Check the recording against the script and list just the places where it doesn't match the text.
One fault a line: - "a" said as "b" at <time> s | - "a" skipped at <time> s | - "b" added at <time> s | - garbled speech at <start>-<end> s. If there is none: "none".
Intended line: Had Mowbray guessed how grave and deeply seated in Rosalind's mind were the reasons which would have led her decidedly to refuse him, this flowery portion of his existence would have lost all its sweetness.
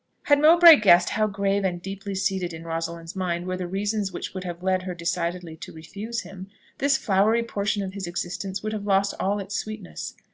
none